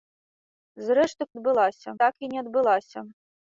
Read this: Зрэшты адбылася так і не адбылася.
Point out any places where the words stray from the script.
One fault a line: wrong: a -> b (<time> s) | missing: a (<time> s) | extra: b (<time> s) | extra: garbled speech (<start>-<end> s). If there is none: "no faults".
no faults